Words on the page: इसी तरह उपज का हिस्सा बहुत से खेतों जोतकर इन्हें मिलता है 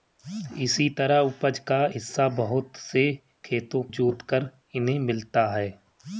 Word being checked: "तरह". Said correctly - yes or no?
yes